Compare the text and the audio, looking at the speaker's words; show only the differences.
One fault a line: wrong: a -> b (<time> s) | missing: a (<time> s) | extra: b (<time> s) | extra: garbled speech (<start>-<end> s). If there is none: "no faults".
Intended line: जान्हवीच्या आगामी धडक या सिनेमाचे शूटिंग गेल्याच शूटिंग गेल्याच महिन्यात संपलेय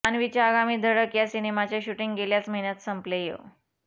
missing: शूटिंग गेल्याच (2.5 s)